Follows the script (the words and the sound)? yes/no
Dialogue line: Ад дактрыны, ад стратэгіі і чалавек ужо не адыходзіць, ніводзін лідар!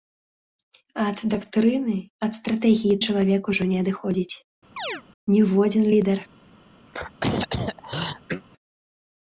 no